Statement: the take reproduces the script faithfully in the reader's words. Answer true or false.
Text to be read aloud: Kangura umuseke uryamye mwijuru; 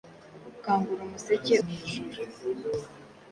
false